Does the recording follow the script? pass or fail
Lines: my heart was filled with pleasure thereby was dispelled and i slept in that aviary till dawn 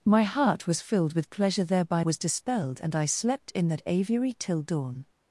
pass